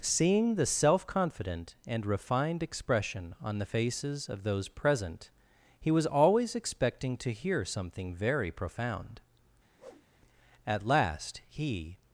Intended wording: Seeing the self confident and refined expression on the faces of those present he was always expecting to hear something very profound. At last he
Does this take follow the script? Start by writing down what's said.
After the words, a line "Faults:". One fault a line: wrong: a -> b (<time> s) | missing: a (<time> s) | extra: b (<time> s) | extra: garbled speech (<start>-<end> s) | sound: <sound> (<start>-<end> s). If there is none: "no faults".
Seeing the self confident and refined expression on the faces of those present he was always expecting to hear something very profound. At last he
Faults:
sound: whoosh (9.8-10.1 s)